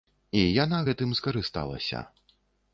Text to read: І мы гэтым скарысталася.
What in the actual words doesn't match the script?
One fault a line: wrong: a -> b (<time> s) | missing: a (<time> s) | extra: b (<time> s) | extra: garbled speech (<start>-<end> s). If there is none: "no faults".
wrong: мы -> яна (0.6 s)